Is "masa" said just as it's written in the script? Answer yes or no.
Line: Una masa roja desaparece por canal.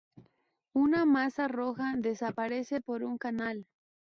yes